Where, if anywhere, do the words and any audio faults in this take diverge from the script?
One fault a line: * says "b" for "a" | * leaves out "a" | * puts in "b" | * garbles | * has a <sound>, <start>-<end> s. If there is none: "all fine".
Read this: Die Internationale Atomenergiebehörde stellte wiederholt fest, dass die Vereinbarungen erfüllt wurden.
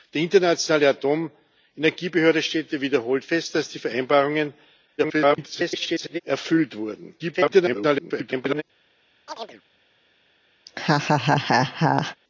* garbles
* garbles
* has a chirp, 9.3-9.6 s
* has a laugh, 10.7-12.2 s